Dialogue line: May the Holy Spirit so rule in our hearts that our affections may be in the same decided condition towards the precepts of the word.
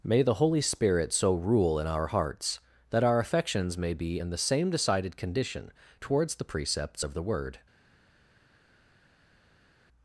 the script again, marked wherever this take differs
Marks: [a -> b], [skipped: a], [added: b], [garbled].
May the Holy Spirit so rule in our hearts that our affections may be in the same decided condition towards the precepts of the word.